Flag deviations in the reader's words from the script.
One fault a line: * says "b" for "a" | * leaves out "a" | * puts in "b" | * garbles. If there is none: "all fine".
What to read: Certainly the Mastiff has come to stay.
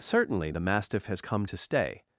all fine